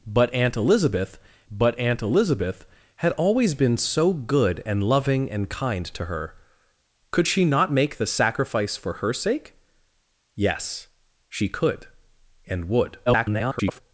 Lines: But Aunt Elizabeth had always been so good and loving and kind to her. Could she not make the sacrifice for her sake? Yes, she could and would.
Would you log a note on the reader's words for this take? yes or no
yes